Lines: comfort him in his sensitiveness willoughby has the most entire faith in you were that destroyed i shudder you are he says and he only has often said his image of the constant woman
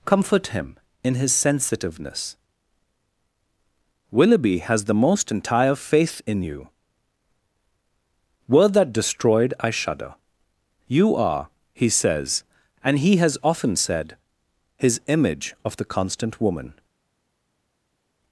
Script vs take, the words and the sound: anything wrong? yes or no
yes